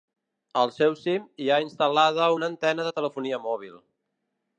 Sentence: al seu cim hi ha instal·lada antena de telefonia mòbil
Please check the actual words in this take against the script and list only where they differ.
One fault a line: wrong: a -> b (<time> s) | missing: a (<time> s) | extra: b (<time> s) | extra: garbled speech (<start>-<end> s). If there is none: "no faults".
extra: una (2.4 s)